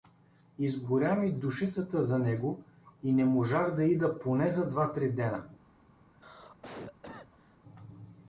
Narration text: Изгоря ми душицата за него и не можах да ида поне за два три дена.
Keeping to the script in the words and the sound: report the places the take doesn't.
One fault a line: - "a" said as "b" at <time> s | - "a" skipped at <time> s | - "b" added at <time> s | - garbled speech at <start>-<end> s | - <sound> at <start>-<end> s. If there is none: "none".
- cough at 6.1-7.6 s